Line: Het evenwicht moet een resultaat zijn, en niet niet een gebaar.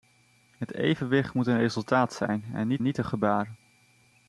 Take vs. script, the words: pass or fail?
pass